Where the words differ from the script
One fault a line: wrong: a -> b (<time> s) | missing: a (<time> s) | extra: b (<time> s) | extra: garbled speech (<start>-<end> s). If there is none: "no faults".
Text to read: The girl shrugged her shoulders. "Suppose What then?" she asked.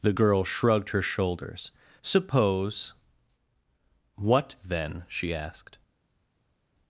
no faults